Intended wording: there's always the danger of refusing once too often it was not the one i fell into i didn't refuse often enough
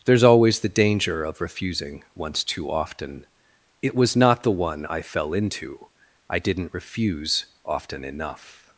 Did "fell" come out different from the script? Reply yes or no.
no